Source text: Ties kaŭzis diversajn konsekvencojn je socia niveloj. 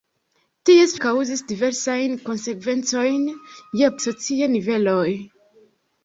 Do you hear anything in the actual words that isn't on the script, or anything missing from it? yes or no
no